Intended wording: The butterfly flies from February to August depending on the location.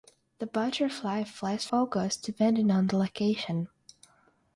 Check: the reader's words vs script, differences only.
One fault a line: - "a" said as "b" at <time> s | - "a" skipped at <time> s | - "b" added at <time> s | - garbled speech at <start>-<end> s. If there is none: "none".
- "from February to" skipped at 1.7 s